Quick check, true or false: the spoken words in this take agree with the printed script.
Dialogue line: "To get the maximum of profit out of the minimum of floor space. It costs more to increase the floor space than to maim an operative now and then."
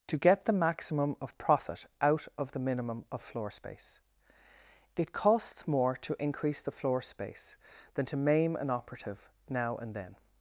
true